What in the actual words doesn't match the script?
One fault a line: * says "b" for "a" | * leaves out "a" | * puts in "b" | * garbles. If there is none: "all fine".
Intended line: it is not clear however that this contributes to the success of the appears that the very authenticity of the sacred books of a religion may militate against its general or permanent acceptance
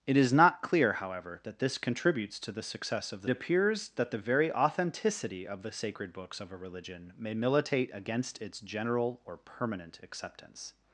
all fine